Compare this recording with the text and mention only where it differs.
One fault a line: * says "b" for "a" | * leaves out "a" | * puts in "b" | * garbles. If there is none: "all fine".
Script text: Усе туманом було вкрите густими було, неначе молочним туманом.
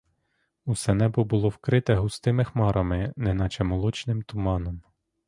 * says "небо" for "туманом"
* says "хмарами" for "було"